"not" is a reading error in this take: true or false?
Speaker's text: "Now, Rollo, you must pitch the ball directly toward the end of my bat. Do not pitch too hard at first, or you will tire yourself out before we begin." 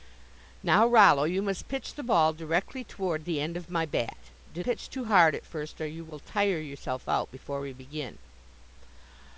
true